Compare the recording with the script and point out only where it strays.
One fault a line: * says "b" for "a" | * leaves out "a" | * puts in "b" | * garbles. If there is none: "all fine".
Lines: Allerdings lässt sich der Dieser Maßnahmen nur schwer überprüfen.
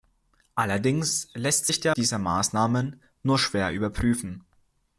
all fine